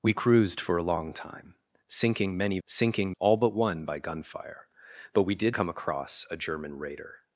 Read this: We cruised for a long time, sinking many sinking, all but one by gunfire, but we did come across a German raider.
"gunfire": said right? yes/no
yes